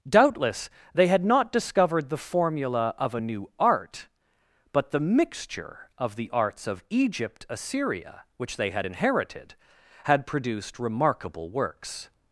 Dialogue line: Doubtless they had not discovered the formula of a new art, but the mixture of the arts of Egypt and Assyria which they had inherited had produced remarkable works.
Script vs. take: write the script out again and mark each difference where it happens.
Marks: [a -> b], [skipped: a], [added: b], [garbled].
Doubtless they had not discovered the formula of a new art, but the mixture of the arts of Egypt [skipped: and] Assyria which they had inherited had produced remarkable works.